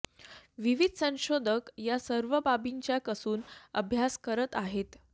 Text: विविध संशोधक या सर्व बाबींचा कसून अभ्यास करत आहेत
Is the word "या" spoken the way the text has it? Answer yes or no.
yes